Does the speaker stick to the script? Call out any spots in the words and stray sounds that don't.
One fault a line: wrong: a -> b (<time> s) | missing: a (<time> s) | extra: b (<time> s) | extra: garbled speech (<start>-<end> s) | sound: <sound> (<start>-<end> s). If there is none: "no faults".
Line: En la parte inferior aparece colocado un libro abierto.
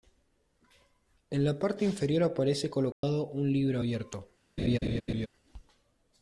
sound: dropout (2.9-3.0 s)
sound: laugh (4.6-5.3 s)